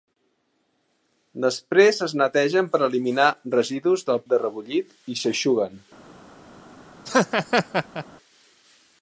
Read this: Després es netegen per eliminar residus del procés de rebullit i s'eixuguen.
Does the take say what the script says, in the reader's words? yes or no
no